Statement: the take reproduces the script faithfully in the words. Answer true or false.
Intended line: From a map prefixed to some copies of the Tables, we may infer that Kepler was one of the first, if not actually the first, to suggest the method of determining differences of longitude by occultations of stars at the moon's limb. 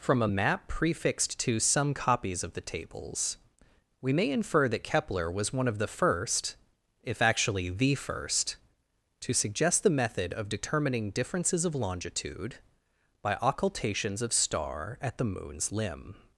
false